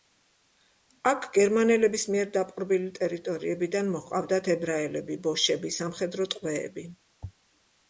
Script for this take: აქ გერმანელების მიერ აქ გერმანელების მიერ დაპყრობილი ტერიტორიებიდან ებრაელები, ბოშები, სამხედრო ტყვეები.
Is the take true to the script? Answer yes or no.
no